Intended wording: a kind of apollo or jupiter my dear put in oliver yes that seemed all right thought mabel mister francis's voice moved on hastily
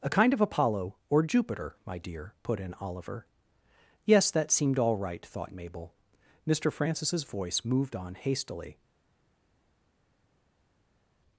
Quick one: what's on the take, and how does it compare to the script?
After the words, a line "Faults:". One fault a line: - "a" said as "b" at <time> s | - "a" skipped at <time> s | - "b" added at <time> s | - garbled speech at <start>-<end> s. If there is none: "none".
a kind of apollo or jupiter my dear put in oliver yes that seemed all right thought mabel mister francis's voice moved on hastily
Faults:
none